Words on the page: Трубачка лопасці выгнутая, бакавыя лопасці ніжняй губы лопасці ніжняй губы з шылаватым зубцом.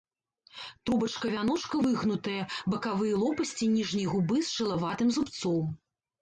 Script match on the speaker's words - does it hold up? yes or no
no